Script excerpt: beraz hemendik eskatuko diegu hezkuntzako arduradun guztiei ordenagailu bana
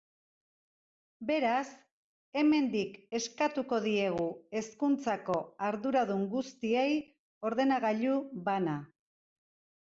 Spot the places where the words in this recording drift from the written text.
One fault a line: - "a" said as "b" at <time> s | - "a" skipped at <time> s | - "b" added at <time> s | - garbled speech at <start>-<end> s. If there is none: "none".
none